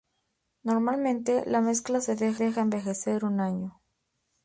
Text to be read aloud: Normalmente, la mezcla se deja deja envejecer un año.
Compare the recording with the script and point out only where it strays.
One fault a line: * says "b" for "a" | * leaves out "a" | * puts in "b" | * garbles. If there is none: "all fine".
all fine